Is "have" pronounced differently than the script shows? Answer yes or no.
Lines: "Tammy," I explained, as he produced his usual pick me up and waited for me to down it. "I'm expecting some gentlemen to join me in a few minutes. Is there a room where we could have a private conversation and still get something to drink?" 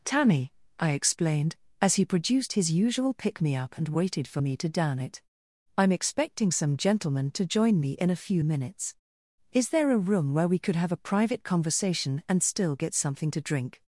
no